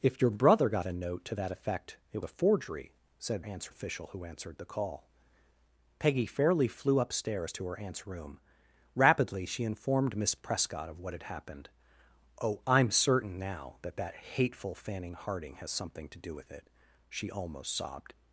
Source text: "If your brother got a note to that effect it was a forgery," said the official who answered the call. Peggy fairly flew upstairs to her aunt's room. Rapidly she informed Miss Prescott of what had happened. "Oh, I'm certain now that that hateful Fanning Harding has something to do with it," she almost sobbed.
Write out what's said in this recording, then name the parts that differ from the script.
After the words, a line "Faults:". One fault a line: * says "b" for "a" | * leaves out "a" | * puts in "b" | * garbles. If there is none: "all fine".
"If your brother got a note to that effect it a forgery," said aunt's official who answered the call. Peggy fairly flew upstairs to her aunt's room. Rapidly she informed Miss Prescott of what had happened. "Oh, I'm certain now that that hateful Fanning Harding has something to do with it," she almost sobbed.
Faults:
* leaves out "was"
* says "aunt's" for "the"